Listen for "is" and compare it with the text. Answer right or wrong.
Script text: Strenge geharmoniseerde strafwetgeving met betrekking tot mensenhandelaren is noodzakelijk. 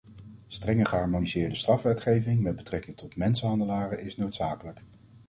right